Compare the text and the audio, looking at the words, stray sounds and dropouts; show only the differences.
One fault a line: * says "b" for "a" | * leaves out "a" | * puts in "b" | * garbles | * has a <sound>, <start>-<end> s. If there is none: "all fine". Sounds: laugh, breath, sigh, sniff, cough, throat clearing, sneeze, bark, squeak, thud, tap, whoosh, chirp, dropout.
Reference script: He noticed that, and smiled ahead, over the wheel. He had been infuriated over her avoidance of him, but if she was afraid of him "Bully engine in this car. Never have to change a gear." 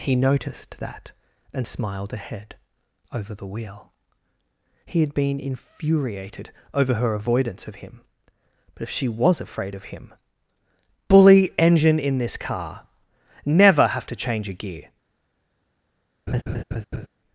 * has a laugh, 16.3-17.1 s